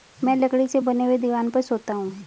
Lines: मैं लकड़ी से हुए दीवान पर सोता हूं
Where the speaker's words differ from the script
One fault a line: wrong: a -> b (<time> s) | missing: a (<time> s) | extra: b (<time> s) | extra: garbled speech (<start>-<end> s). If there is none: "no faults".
extra: बने (0.8 s)